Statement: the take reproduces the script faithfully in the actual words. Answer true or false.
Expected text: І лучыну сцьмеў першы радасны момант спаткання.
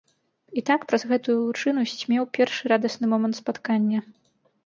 false